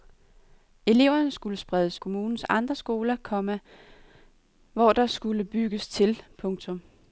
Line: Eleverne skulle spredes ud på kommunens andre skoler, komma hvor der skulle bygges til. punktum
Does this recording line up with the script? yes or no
no